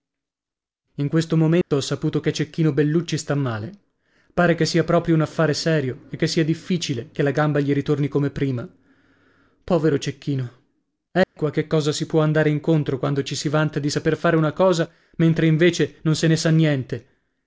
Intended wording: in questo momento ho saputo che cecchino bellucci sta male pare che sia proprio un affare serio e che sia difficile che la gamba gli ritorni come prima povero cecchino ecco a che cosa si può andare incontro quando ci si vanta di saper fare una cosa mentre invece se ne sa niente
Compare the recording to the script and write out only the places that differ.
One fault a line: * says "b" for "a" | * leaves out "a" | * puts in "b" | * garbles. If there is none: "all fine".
* puts in "non"